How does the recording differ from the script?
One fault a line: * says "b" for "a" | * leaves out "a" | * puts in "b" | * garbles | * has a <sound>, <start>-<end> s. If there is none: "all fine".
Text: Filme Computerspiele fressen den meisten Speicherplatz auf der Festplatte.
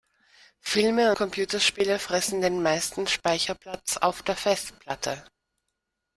all fine